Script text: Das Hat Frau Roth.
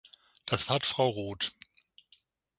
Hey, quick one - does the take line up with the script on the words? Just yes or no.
yes